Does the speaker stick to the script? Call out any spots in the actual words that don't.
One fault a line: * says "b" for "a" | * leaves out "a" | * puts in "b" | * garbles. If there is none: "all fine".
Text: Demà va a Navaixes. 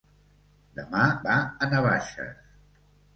all fine